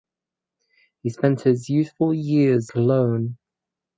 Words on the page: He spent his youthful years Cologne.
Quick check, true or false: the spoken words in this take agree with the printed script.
true